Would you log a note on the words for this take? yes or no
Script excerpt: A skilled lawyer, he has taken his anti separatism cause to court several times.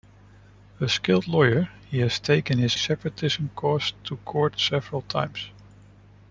yes